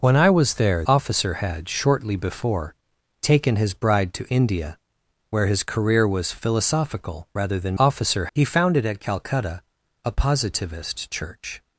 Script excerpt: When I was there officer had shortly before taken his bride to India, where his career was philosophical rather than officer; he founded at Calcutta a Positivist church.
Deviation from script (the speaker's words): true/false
false